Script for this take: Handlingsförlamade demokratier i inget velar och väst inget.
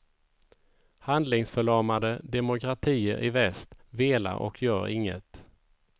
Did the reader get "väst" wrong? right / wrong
wrong